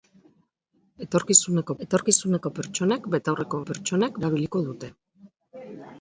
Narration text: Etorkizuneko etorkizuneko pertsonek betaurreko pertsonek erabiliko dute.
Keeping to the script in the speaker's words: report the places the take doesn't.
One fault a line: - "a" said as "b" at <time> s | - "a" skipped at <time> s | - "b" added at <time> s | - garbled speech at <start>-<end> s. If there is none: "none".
none